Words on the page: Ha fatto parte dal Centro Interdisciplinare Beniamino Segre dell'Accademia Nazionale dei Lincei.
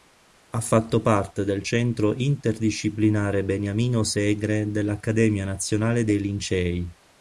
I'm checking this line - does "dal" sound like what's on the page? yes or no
no